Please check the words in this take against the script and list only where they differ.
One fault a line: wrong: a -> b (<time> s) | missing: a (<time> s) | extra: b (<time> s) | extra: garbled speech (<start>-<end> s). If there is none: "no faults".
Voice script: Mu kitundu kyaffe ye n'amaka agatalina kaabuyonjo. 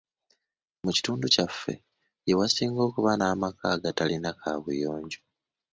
extra: wasinga okuba (2.4 s)